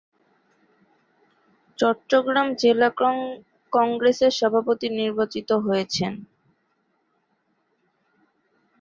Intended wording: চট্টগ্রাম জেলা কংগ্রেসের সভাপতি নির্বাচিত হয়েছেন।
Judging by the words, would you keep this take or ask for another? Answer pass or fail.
pass